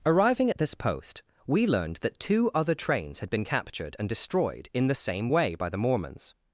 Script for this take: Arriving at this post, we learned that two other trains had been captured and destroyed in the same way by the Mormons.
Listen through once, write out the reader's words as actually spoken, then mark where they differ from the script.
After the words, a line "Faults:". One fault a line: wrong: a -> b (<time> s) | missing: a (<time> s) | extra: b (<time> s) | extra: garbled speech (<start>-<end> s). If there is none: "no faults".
Arriving at this post, we learned that two other trains had been captured and destroyed in the same way by the Mormons.
Faults:
no faults